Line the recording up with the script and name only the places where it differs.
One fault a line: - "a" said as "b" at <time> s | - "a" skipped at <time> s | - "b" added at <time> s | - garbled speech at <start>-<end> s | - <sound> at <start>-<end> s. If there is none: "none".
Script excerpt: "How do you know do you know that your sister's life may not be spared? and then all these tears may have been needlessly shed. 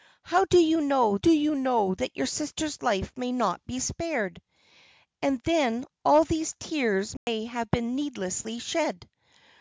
- dropout at 7.2-7.3 s